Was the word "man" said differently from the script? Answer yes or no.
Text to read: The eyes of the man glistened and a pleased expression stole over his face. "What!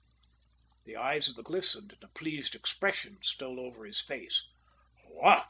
yes